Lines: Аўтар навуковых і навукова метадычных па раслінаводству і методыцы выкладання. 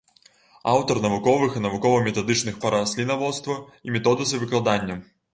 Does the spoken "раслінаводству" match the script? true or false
true